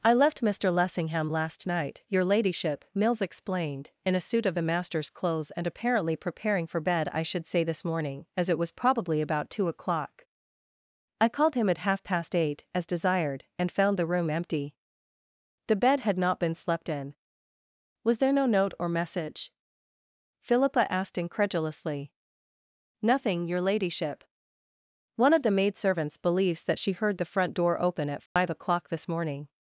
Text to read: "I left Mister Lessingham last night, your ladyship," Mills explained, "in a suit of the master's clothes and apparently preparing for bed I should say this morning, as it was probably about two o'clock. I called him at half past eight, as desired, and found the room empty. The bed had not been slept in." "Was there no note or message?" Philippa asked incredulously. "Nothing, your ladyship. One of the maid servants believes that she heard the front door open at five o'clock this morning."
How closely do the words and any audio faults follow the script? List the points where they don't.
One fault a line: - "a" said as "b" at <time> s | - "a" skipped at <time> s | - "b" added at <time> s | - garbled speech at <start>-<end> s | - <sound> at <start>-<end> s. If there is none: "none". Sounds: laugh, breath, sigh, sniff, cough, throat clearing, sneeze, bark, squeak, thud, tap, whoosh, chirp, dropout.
- dropout at 28.3-28.4 s